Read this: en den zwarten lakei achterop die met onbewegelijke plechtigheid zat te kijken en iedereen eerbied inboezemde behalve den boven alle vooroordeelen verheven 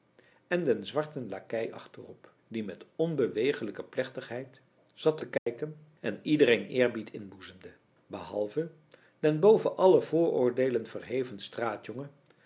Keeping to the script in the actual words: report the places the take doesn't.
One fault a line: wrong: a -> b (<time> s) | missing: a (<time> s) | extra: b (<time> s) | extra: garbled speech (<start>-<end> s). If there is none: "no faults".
no faults